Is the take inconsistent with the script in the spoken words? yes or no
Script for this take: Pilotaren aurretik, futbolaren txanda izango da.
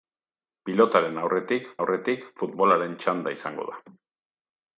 yes